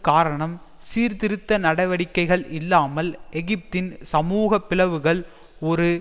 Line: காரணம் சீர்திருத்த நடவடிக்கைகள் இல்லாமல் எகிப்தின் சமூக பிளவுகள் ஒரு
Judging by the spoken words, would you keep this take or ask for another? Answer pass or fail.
pass